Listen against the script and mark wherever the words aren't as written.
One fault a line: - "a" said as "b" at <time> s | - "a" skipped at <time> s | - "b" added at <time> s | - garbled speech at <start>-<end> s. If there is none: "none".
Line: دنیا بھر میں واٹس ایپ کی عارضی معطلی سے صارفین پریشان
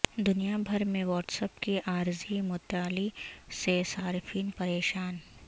none